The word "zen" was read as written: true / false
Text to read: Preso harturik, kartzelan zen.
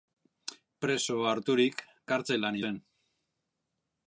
true